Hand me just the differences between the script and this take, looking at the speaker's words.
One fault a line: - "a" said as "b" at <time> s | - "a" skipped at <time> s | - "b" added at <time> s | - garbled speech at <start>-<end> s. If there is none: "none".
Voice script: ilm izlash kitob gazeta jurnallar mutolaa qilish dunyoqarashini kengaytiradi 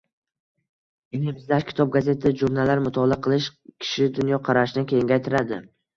- "kishi" added at 3.9 s